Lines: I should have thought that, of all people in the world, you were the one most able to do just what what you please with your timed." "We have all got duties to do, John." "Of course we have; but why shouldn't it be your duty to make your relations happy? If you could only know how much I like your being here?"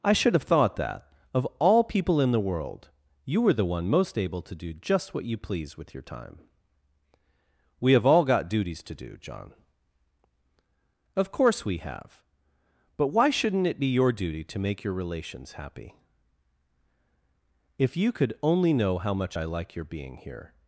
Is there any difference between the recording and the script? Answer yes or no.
yes